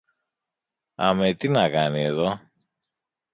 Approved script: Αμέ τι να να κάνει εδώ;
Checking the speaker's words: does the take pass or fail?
fail